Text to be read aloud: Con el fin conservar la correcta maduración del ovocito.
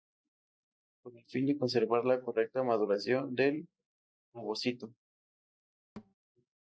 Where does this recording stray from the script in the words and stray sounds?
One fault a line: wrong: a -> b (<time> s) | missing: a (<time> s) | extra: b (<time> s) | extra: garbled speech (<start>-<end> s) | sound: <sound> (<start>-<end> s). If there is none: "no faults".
extra: de (1.4 s)
sound: thud (6.0-6.1 s)